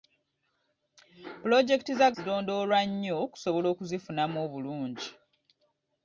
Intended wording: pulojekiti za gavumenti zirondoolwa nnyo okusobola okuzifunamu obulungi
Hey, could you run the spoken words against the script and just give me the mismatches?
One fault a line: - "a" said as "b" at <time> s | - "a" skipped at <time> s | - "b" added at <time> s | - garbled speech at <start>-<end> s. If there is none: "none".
- "gavumenti" skipped at 2.1 s